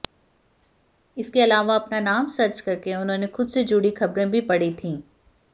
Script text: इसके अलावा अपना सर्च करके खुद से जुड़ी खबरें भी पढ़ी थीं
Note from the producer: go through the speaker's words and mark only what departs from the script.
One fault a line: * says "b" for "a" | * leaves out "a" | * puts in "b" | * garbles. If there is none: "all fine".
* puts in "नाम"
* puts in "उन्होंने"